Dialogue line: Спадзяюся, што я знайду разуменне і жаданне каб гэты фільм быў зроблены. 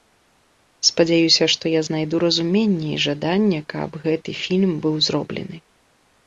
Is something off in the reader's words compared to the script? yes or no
no